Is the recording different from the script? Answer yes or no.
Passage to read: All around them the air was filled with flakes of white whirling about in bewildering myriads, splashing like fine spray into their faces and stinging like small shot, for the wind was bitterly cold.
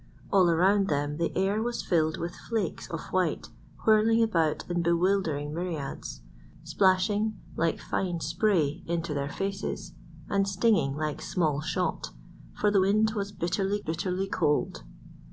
yes